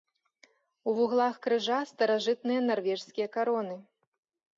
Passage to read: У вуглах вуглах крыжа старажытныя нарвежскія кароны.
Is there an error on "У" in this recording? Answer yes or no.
no